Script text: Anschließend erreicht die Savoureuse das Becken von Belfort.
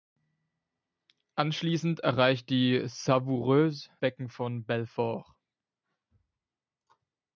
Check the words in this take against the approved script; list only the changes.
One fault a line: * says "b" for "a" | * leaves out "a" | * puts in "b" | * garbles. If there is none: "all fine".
* leaves out "das"